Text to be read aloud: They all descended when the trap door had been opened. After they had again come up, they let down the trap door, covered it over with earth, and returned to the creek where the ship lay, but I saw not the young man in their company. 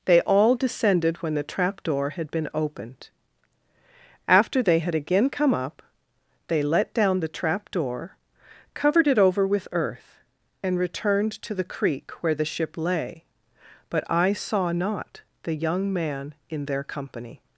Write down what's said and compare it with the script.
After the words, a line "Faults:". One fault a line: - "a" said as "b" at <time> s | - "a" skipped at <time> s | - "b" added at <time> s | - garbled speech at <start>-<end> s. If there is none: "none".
They all descended when the trap door had been opened. After they had again come up, they let down the trap door, covered it over with earth, and returned to the creek where the ship lay, but I saw not the young man in their company.
Faults:
none